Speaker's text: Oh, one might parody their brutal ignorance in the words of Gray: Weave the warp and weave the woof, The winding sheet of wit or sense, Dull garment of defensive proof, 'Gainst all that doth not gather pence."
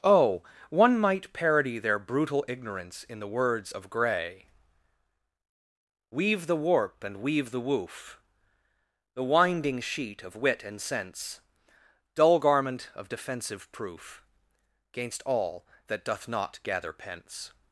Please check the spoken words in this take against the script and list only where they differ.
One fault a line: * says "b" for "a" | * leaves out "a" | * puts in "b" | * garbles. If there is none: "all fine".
* says "and" for "or"